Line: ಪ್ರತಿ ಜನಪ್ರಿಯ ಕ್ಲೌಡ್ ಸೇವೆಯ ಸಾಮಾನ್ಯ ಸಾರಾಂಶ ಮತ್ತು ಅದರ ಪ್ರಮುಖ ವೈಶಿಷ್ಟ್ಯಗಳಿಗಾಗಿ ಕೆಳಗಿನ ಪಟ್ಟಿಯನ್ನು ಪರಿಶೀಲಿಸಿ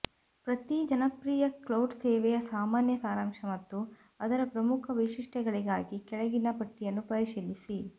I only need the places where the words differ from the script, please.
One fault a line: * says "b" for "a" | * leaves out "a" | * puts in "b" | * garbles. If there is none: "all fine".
all fine